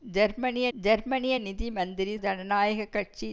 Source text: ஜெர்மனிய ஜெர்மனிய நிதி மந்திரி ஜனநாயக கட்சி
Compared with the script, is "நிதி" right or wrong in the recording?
right